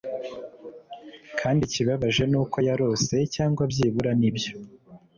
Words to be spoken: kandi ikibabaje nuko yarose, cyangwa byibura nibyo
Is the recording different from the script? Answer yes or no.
no